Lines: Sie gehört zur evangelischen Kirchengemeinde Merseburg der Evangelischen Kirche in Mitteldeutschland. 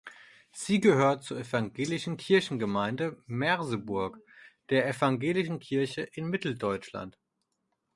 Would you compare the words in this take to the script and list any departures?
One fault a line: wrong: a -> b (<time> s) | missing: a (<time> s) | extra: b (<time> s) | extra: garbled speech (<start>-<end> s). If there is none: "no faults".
no faults